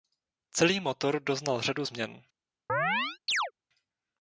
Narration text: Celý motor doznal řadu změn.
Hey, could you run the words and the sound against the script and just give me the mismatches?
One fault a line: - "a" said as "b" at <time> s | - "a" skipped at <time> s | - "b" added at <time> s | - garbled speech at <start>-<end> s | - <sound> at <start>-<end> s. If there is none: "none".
- chirp at 2.7-3.5 s